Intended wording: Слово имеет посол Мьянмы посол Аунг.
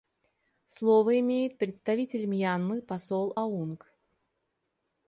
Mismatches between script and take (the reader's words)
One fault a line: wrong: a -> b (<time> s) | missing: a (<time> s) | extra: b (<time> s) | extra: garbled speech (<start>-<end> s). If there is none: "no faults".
wrong: посол -> представитель (1.6 s)